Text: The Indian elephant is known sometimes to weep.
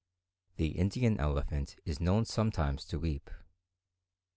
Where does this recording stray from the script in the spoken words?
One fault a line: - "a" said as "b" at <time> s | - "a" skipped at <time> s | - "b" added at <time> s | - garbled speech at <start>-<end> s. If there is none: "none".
none